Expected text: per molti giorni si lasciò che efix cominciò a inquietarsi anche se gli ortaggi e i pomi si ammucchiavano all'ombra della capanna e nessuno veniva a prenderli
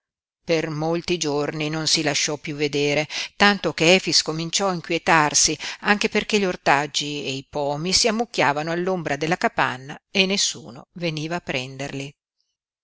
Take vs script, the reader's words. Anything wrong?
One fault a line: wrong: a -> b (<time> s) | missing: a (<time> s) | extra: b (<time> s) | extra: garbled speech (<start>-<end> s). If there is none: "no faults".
extra: non (1.7 s)
extra: piú vedere tanto (2.4 s)
wrong: se -> perché (6.1 s)